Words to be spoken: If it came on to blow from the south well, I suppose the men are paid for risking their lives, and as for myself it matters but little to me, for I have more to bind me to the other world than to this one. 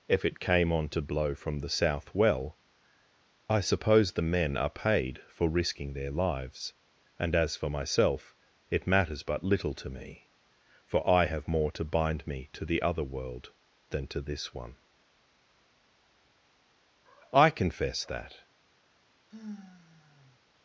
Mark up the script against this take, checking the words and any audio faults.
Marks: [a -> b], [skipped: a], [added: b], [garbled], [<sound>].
If it came on to blow from the south well, I suppose the men are paid for risking their lives, and as for myself it matters but little to me, for I have more to bind me to the other world than to this one. [added: I confess that] [sigh]